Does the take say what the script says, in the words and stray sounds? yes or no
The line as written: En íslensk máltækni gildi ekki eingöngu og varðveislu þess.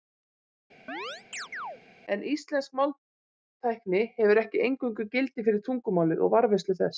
no